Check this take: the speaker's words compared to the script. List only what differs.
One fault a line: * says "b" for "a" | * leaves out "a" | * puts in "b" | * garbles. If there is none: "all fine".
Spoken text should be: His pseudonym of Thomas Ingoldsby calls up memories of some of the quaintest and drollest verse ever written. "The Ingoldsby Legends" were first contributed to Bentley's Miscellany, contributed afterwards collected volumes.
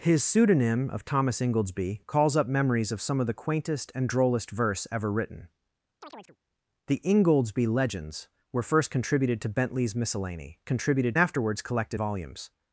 all fine